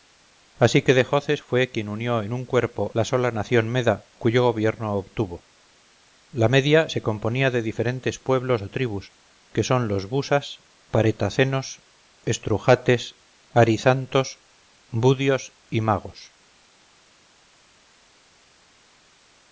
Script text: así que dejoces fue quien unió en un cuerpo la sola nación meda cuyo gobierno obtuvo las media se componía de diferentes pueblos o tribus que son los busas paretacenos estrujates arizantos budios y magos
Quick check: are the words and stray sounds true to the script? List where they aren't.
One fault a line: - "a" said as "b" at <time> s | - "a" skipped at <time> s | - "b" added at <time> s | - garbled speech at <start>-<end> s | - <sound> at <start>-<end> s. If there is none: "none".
- "las" said as "la" at 6.3 s